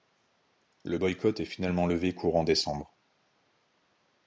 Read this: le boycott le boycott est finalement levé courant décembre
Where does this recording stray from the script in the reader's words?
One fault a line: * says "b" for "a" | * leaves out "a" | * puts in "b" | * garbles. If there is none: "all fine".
* leaves out "le boycott"